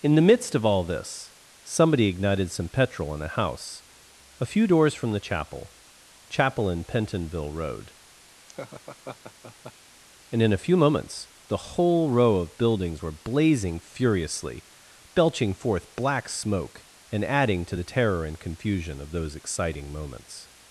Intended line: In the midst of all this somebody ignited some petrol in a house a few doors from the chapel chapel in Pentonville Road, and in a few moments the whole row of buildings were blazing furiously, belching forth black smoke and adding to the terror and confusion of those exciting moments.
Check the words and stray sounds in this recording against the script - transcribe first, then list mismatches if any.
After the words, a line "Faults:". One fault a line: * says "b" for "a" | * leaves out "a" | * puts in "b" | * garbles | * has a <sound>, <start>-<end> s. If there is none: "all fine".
In the midst of all this somebody ignited some petrol in a house a few doors from the chapel chapel in Pentonville Road, and in a few moments the whole row of buildings were blazing furiously, belching forth black smoke and adding to the terror and confusion of those exciting moments.
Faults:
* has a laugh, 8.5-9.7 s